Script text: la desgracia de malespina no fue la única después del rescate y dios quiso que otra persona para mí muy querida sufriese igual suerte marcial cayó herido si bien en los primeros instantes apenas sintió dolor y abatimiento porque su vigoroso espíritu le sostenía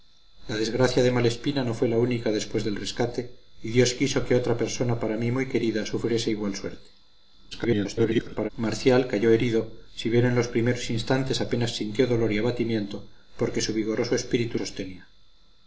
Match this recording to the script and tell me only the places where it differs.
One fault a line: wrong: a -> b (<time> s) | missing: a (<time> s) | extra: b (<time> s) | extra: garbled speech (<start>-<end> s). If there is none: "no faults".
extra: garbled speech (7.5-8.5 s)
missing: le (14.6 s)